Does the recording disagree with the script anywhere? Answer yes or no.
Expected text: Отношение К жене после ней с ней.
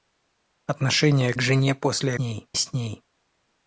no